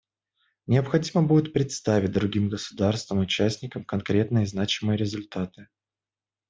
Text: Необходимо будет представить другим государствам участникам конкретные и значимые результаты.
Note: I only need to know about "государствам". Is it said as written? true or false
true